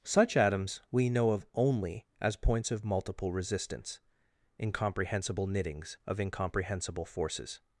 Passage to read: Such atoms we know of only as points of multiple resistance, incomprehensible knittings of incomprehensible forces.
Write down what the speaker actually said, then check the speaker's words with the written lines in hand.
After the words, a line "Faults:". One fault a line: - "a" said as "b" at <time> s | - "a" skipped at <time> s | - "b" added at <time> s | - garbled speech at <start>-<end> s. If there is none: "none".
Such atoms we know of only as points of multiple resistance, incomprehensible knittings of incomprehensible forces.
Faults:
none